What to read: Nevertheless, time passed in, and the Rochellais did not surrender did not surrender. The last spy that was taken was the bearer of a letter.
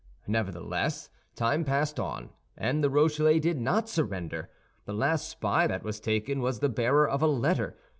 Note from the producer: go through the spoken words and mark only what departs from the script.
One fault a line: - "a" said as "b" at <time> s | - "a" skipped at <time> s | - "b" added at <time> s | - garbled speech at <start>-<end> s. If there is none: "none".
- "in" said as "on" at 2.0 s
- "did not surrender" skipped at 4.5 s